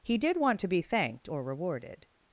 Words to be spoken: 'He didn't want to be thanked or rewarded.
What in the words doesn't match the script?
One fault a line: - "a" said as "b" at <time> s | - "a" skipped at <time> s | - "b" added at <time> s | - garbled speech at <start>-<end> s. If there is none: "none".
- "didn't" said as "did" at 0.2 s